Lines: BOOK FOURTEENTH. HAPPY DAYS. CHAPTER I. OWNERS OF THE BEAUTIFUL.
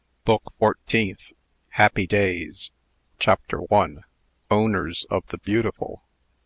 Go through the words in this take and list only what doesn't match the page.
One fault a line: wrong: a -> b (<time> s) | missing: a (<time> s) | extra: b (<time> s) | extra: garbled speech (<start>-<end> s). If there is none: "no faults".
no faults